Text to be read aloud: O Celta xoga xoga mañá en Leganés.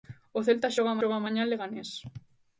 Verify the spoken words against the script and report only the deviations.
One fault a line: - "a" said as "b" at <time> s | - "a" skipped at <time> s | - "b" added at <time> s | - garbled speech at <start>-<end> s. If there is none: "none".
none